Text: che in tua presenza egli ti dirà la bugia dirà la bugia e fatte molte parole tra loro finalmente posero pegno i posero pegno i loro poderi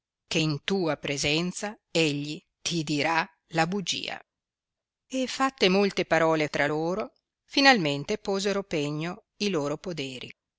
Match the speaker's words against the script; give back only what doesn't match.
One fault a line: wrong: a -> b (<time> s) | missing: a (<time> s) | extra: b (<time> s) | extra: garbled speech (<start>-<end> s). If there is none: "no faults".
missing: dirà la bugia (4.2 s)
missing: posero pegno i (9.5 s)